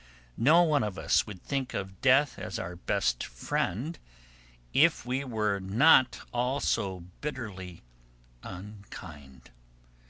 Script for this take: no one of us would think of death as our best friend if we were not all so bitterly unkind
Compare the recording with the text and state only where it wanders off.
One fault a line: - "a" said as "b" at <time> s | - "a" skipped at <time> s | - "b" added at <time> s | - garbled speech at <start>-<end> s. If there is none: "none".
none